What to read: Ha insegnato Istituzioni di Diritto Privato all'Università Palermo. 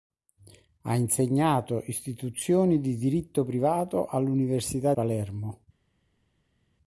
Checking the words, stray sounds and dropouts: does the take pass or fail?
pass